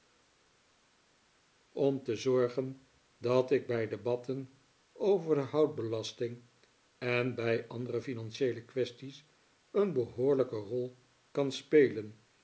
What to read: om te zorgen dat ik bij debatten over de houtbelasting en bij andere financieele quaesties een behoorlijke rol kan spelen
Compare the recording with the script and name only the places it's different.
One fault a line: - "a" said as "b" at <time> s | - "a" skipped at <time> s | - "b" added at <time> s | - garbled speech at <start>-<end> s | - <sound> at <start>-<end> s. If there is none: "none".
none